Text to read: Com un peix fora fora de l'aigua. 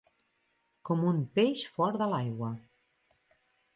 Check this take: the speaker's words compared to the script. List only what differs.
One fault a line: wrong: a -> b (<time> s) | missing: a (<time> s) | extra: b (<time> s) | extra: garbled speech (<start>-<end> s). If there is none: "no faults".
missing: fora (2.0 s)